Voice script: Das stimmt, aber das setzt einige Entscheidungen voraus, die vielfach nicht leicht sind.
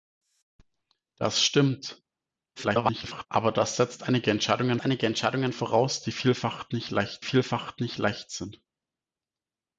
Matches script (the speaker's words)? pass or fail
fail